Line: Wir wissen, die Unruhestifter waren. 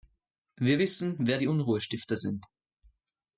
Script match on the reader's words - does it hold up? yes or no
no